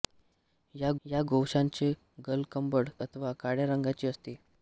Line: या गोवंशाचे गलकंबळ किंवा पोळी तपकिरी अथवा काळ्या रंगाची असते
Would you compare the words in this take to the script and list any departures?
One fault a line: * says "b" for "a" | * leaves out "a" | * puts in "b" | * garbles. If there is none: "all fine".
* puts in "या"
* leaves out "किंवा पोळी तपकिरी"